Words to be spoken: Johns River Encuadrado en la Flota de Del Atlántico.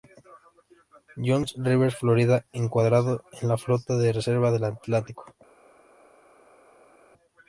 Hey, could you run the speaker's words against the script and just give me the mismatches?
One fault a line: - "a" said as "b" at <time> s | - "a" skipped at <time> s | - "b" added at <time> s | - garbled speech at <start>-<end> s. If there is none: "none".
- "Florida" added at 1.9 s
- "Reserva" added at 4.1 s